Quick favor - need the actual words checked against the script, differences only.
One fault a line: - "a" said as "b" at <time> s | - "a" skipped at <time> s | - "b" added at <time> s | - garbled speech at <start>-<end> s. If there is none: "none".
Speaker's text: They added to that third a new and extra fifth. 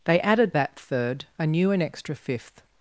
- "to" skipped at 0.6 s